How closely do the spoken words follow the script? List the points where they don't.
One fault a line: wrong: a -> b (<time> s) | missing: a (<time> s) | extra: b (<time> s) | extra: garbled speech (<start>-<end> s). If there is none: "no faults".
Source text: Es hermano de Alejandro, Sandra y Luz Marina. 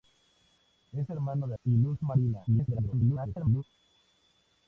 missing: Alejandro Sandra (1.5 s)
extra: garbled speech (2.5-3.6 s)